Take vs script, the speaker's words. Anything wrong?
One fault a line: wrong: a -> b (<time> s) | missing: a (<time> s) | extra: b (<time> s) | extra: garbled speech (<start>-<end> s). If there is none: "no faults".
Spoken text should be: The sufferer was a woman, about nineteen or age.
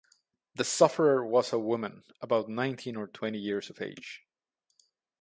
extra: twenty years of (3.0 s)